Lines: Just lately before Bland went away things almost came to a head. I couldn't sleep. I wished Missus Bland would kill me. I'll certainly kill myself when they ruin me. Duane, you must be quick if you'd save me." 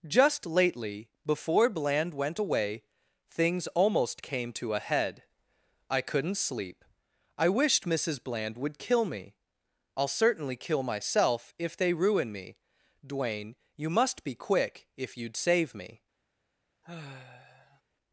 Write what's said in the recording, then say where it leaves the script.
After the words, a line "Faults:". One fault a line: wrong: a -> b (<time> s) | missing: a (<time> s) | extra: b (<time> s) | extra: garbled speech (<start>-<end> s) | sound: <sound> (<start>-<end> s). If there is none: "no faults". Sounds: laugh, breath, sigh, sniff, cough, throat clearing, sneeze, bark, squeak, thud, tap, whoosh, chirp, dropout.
Just lately before Bland went away things almost came to a head. I couldn't sleep. I wished Missus Bland would kill me. I'll certainly kill myself if they ruin me. Duane, you must be quick if you'd save me."
Faults:
wrong: when -> if (11.6 s)
sound: sigh (16.8-17.8 s)